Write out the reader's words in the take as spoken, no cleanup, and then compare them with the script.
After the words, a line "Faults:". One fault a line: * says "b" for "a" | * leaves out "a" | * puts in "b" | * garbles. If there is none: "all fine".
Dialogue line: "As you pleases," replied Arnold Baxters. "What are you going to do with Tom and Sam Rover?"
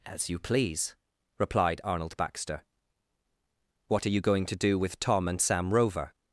"As you please," replied Arnold Baxter. "What are you going to do with Tom and Sam Rover?"
Faults:
* says "please" for "pleases"
* says "Baxter" for "Baxters"